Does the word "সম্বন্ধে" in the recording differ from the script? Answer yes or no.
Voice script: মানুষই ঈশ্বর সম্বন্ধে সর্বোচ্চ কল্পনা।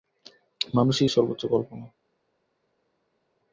yes